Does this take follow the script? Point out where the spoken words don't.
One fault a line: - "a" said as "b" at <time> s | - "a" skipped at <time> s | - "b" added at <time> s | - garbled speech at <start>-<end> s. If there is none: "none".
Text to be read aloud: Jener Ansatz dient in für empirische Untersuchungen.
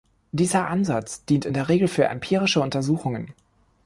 - "Jener" said as "Dieser" at 0.3 s
- "der Regel" added at 1.5 s